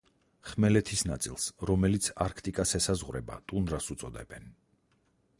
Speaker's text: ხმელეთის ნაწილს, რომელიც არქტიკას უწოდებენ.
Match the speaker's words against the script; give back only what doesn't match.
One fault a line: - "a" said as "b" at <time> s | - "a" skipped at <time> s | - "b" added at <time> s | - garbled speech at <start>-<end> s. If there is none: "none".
- "ესაზღვრება ტუნდრას" added at 2.8 s